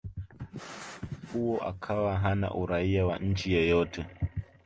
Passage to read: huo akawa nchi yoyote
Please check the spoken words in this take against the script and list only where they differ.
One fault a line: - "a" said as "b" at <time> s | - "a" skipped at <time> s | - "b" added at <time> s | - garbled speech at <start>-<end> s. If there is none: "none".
- "hana Uraia wa" added at 2.2 s